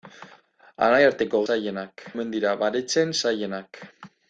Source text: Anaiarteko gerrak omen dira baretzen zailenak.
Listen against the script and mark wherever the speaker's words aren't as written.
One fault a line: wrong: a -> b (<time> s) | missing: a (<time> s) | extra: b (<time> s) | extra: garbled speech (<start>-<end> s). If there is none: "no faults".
wrong: gerrak -> zailenak (1.5 s)